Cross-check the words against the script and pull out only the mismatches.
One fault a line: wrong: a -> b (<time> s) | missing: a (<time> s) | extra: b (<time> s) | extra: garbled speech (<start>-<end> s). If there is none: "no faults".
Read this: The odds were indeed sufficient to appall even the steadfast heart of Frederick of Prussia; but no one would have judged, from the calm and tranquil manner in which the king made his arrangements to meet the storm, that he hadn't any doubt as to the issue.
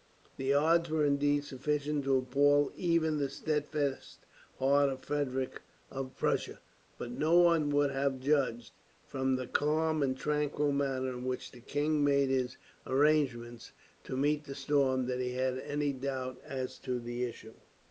wrong: hadn't -> had (15.3 s)